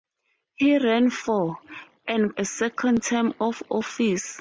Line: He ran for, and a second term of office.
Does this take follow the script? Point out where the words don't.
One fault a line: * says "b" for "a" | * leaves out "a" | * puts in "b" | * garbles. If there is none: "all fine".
all fine